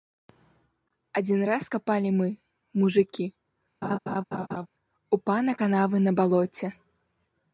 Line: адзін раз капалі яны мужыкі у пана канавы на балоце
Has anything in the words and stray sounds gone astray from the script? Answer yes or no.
yes